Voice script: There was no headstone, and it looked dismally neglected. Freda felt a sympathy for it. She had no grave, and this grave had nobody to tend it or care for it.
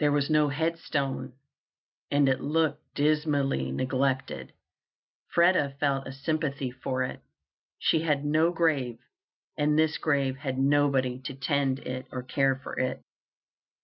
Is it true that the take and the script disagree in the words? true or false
false